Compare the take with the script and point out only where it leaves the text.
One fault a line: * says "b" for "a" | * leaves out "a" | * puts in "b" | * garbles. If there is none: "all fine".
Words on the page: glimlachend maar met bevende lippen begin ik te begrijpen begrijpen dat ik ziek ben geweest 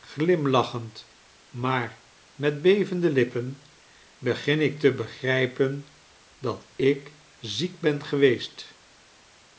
* leaves out "begrijpen"